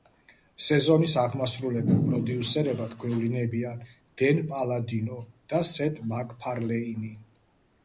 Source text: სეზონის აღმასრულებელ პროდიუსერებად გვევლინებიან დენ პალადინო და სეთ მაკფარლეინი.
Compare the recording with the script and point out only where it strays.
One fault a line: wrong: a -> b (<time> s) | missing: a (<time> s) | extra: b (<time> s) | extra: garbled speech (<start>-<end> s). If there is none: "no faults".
no faults